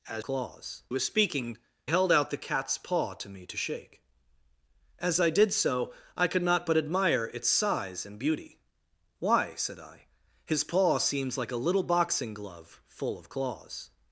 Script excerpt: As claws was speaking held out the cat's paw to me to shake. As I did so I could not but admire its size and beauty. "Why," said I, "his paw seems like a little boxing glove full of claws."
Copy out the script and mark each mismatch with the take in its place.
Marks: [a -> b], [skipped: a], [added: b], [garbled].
As claws was speaking held out the cat's paw to me to shake. As I did so I could not but admire its size and beauty. "Why," said I, "his paw seems like a little boxing glove full of claws."